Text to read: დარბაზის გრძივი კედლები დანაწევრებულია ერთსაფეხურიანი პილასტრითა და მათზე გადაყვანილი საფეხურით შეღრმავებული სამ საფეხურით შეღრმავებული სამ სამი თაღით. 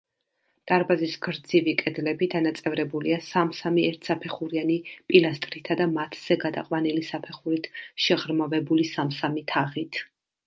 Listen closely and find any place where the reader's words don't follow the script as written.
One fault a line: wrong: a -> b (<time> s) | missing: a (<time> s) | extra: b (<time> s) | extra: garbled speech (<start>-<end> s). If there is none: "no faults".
extra: სამ სამი (3.2 s)
missing: საფეხურით შეღრმავებული სამ (9.1 s)